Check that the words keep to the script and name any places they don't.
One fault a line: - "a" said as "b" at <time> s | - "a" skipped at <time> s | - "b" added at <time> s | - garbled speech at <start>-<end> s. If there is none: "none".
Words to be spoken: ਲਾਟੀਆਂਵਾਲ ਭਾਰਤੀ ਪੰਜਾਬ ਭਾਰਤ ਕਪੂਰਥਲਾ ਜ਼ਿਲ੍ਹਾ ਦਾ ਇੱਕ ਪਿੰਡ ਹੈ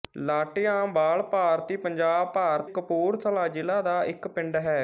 none